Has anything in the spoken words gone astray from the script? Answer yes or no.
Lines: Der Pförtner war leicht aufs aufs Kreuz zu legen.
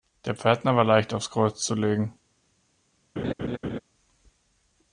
yes